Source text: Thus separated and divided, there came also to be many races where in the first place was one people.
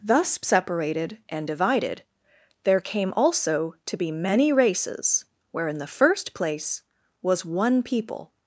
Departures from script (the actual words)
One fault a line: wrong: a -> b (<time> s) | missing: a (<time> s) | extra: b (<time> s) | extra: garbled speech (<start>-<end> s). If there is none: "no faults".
no faults